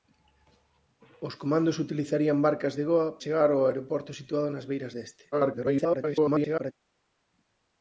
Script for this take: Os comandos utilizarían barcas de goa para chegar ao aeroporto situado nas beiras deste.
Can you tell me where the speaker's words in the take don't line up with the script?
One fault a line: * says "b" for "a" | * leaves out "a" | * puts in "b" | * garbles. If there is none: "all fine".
* leaves out "para"
* garbles